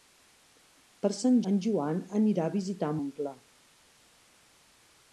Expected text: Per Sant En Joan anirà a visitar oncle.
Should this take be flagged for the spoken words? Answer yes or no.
no